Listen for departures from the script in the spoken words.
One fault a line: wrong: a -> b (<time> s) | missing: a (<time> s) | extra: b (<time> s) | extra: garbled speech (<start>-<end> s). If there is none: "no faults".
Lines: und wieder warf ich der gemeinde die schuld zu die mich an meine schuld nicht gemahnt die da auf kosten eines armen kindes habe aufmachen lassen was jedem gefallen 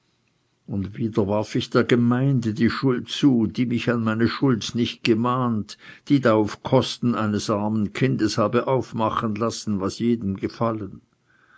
no faults